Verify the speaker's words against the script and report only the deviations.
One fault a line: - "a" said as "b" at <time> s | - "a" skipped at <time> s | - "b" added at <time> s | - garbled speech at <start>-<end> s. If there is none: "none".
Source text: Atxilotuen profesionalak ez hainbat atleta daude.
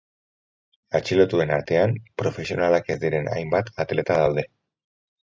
- "artean" added at 1.6 s
- "diren" added at 3.0 s